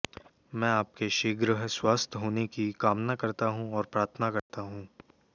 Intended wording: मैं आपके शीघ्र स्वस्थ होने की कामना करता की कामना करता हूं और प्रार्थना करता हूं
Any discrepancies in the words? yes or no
yes